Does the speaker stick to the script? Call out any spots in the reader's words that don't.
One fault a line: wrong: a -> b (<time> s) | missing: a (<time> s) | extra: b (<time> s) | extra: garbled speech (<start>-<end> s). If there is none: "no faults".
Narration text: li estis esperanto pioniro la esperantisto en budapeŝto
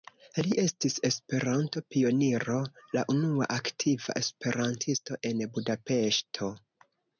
extra: unua aktiva (3.2 s)